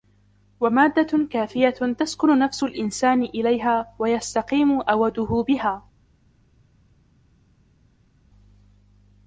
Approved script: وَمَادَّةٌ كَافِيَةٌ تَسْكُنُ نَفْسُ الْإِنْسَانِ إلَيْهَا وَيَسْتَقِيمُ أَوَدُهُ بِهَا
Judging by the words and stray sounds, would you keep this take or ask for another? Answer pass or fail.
pass